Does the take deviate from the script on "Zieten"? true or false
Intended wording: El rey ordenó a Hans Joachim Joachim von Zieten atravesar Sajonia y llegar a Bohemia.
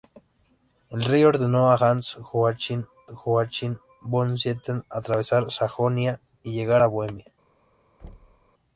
false